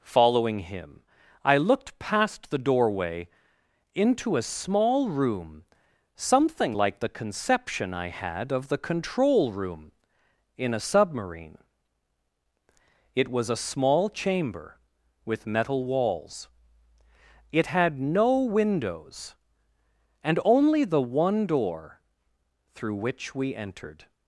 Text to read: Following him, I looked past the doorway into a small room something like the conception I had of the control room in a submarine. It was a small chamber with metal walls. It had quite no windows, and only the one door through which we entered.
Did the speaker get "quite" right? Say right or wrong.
wrong